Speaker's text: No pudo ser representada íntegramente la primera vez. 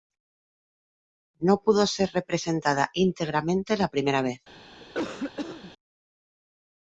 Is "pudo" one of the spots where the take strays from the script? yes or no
no